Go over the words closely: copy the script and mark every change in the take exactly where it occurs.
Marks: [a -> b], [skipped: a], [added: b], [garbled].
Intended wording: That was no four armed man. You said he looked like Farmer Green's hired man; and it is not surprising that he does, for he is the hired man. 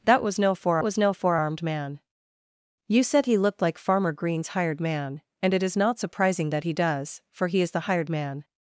That was no four [added: was no four] armed man. You said he looked like Farmer Green's hired man; and it is not surprising that he does, for he is the hired man.